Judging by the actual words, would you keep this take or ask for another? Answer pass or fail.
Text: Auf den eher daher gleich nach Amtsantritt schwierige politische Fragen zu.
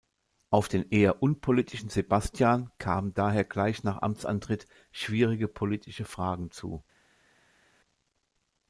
fail